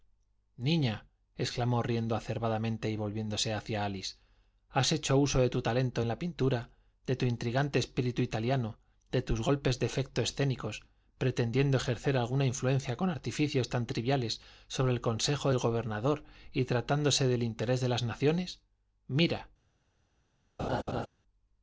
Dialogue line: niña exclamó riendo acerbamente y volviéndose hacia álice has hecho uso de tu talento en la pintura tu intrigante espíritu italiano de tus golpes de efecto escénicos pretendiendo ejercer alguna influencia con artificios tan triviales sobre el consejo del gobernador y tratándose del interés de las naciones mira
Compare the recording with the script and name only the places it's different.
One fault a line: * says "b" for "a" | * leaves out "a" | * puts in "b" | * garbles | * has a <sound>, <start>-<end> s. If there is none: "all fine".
* puts in "de"
* has a laugh, 20.6-21.1 s